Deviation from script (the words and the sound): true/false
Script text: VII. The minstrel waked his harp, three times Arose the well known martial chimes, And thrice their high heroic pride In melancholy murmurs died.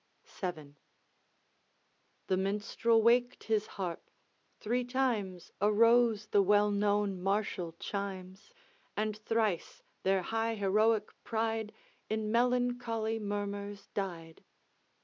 false